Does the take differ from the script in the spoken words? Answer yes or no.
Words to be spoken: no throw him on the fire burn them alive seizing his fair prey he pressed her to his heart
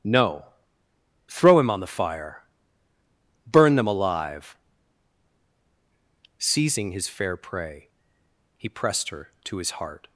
no